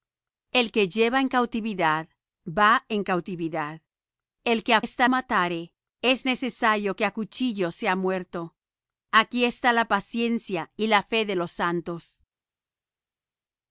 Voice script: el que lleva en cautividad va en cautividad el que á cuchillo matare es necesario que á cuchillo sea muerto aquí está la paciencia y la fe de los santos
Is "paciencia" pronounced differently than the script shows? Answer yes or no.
no